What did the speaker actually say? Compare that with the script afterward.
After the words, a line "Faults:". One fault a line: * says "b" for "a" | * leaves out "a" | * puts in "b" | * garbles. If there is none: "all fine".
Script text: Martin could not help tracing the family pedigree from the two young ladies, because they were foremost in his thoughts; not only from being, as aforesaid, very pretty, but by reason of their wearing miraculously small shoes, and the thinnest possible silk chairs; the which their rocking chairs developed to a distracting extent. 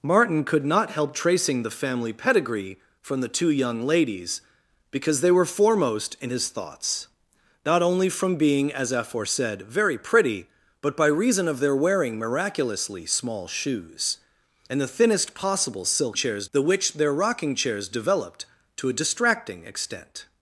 Martin could not help tracing the family pedigree from the two young ladies, because they were foremost in his thoughts; not only from being, as aforesaid, very pretty, but by reason of their wearing miraculously small shoes, and the thinnest possible silk chairs; the which their rocking chairs developed to a distracting extent.
Faults:
all fine